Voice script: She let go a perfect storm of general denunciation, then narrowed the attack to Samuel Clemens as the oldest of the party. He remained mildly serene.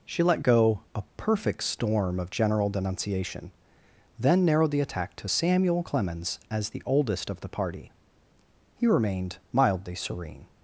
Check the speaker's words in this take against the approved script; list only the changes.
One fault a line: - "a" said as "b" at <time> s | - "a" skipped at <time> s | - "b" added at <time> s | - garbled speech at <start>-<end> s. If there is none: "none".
none